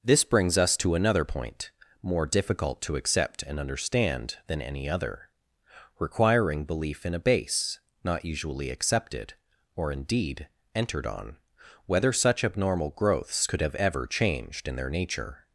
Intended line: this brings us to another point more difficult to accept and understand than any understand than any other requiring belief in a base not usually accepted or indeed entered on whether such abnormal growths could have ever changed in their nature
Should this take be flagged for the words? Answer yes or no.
yes